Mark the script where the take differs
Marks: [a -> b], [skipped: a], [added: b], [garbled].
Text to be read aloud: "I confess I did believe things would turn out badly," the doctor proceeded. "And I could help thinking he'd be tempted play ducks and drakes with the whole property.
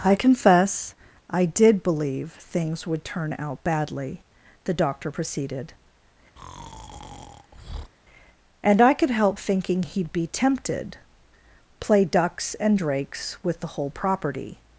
"I confess I did believe things would turn out badly," the doctor proceeded. "And I could help thinking he'd be tempted play ducks and drakes with the whole property.